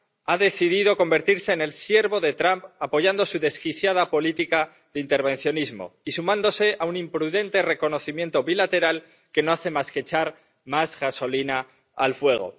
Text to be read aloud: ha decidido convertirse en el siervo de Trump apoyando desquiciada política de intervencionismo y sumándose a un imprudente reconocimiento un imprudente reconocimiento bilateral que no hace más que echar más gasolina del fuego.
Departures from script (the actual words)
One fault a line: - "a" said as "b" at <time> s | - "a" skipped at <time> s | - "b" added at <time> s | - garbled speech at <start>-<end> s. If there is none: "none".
- "su" added at 3.2 s
- "un imprudente reconocimiento" skipped at 8.4 s
- "del" said as "al" at 11.9 s